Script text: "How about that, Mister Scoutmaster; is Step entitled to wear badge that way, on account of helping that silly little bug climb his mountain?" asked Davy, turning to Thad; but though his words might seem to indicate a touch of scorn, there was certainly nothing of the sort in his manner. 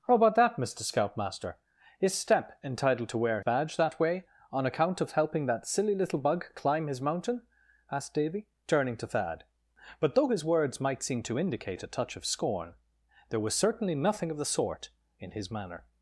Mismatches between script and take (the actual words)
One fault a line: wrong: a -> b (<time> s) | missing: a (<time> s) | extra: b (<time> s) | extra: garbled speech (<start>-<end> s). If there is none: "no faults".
no faults